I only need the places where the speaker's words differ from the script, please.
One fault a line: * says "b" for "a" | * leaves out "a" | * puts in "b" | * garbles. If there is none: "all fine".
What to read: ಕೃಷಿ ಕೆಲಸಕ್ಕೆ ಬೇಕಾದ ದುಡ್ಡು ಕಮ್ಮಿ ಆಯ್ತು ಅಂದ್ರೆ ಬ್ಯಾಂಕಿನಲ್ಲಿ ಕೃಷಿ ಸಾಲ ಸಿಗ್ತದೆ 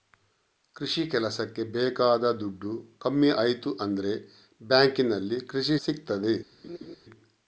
* leaves out "ಸಾಲ"